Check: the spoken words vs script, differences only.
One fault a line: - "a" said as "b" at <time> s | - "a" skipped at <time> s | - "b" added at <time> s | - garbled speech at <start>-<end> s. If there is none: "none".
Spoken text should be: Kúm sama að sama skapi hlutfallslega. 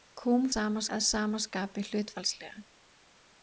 none